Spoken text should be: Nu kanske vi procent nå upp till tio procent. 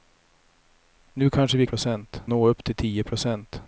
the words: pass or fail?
pass